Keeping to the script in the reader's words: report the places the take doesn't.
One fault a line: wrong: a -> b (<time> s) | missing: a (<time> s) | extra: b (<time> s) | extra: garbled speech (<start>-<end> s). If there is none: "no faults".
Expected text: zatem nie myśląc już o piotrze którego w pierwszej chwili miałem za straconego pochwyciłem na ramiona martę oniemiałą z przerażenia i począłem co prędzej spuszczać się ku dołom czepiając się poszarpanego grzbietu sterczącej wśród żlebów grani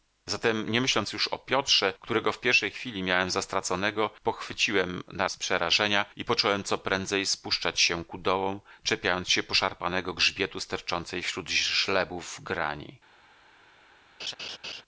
missing: ramiona martę oniemiałą (5.3 s)